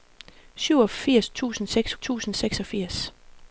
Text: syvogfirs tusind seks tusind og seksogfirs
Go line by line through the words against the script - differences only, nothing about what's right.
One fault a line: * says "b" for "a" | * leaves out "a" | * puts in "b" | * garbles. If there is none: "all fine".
all fine